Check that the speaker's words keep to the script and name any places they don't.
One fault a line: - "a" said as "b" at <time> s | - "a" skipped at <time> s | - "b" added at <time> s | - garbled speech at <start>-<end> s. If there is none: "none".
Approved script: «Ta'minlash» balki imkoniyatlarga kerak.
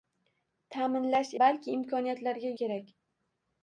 none